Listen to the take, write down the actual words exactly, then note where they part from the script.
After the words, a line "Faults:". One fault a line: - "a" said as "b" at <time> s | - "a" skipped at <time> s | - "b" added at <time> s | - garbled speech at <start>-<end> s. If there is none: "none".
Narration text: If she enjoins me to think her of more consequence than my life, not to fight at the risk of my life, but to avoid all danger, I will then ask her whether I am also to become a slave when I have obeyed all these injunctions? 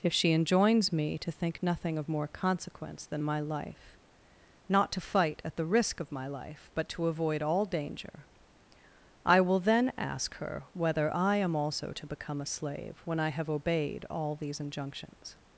If she enjoins me to think nothing of more consequence than my life, not to fight at the risk of my life, but to avoid all danger, I will then ask her whether I am also to become a slave when I have obeyed all these injunctions?
Faults:
- "her" said as "nothing" at 1.6 s